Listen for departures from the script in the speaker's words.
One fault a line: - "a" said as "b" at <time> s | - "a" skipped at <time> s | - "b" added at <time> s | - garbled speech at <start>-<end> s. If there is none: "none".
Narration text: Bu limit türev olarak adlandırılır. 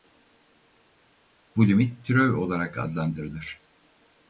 none